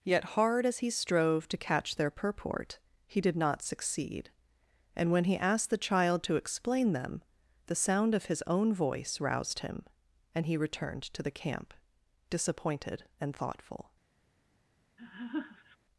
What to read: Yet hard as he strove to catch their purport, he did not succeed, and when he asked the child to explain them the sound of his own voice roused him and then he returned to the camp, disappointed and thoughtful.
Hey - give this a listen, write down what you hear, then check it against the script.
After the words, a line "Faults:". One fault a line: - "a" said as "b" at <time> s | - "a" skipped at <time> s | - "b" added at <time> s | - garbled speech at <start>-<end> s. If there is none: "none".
Yet hard as he strove to catch their purport, he did not succeed, and when he asked the child to explain them the sound of his own voice roused him and he returned to the camp, disappointed and thoughtful.
Faults:
- "then" skipped at 10.4 s